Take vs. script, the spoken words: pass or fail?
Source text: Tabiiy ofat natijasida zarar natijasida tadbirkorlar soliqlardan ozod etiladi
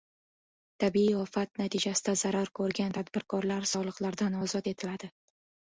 fail